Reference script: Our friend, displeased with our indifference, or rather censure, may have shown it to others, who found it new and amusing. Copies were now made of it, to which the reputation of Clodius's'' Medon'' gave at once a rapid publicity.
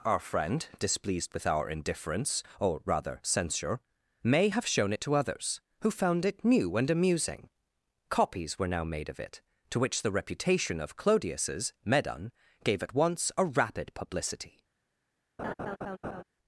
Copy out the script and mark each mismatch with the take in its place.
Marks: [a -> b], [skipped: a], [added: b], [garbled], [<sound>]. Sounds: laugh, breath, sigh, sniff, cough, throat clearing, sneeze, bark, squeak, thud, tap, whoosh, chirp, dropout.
Our friend, displeased with our indifference, or rather censure, may have shown it to others, who found it new and amusing. Copies were now made of it, to which the reputation of Clodius's'' Medon'' gave at once a rapid publicity. [laugh]